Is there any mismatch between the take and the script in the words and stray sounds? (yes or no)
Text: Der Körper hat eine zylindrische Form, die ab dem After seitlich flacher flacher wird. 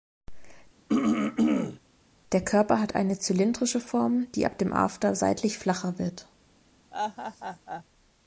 yes